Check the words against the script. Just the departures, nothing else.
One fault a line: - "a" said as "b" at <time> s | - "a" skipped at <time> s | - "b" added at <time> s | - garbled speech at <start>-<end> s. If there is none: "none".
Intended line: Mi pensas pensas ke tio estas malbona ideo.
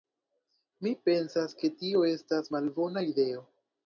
- "pensas" skipped at 1.5 s